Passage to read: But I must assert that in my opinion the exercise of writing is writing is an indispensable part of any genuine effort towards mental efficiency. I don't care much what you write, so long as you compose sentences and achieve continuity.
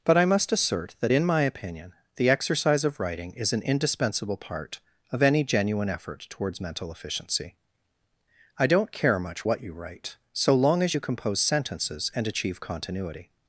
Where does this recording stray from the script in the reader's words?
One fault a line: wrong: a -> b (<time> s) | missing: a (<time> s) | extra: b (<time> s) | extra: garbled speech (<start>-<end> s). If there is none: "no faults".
missing: writing is (3.5 s)